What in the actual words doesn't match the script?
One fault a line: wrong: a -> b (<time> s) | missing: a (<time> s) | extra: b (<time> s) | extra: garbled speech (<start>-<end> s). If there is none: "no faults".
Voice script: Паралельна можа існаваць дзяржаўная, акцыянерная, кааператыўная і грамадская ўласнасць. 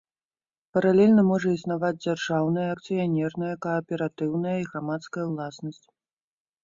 no faults